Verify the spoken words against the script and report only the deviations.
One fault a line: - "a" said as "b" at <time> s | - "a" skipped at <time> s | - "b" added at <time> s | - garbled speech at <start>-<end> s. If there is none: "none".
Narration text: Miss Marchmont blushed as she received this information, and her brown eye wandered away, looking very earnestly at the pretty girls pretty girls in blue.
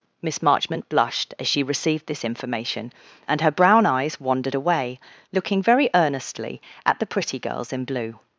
- "eye" said as "eyes" at 3.9 s
- "pretty girls" skipped at 7.7 s